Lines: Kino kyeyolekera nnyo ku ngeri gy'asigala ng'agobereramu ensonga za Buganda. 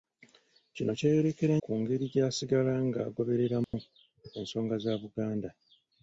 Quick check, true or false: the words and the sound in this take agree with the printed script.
false